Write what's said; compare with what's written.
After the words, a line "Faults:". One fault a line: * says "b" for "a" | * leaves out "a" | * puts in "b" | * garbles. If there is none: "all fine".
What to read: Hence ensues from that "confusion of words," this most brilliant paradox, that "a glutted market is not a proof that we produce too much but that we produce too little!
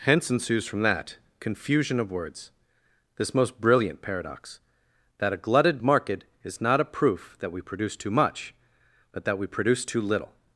Hence ensues from that "confusion of words," this most brilliant paradox, that "a glutted market is not a proof that we produce too much but that we produce too little!
Faults:
all fine